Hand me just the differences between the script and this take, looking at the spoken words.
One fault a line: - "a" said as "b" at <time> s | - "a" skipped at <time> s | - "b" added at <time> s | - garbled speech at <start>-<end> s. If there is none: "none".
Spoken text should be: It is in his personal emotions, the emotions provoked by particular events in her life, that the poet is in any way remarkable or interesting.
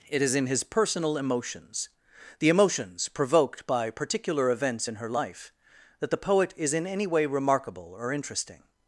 none